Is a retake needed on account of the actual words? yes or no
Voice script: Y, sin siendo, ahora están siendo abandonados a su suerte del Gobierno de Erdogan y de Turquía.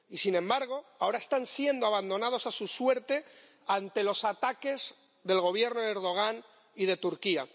yes